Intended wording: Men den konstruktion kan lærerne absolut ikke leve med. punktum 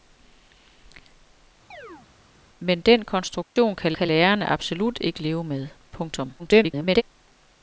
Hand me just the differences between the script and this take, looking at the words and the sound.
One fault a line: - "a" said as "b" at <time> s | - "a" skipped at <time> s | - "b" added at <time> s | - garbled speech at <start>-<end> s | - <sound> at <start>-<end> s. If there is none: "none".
- chirp at 1.7-2.1 s
- dropout at 3.4-3.6 s
- "kan" added at 3.9 s
- garbled speech at 6.4-7.0 s